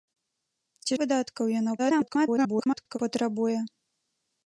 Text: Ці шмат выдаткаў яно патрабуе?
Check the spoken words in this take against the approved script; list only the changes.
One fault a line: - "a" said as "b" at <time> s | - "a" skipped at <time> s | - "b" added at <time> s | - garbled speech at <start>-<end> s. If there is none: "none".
- "шмат" skipped at 0.9 s
- garbled speech at 1.8-3.0 s